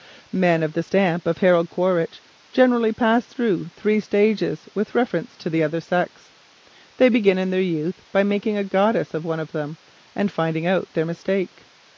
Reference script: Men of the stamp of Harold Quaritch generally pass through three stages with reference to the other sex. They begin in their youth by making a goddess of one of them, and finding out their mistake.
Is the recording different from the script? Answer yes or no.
no